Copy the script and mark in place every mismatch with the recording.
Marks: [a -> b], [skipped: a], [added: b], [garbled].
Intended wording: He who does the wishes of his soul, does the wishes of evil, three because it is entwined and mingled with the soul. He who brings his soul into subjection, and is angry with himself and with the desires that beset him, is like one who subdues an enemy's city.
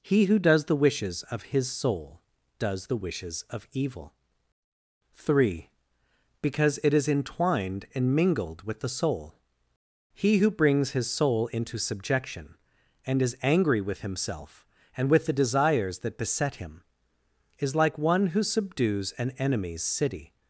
He who does the wishes of his soul, does the wishes of evil, three because it is entwined and mingled with the soul. He who brings his soul into subjection, and is angry with himself and with the desires that beset him, is like one who subdues an enemy's city.